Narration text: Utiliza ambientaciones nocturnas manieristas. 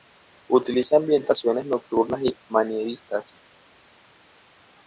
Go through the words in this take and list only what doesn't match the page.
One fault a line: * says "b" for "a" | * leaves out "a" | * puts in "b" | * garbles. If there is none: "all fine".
* puts in "y"